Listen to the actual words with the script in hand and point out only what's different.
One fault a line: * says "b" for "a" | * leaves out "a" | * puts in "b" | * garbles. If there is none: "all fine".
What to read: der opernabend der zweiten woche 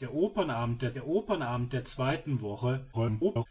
* puts in "der opernabend der"
* garbles